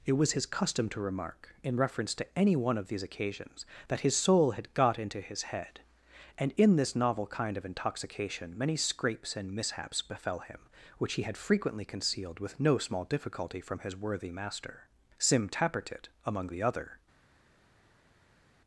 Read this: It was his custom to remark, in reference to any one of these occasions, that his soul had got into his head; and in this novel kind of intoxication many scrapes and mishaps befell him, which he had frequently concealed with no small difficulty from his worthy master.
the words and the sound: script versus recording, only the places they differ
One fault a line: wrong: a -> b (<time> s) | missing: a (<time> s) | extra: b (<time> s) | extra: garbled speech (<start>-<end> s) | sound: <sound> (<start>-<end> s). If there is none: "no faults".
extra: Sim Tappertit among the other (15.2 s)